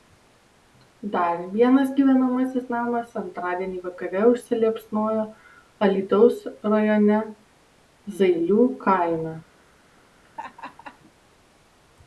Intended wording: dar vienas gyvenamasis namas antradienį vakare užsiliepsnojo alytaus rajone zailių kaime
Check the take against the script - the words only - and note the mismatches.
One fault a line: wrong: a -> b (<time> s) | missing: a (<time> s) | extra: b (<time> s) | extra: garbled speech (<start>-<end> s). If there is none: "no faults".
no faults